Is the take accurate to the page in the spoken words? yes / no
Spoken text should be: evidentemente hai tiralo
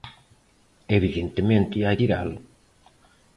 yes